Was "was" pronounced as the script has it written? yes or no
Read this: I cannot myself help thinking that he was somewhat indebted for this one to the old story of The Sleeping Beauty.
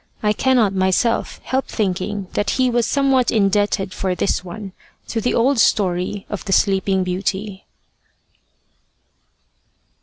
yes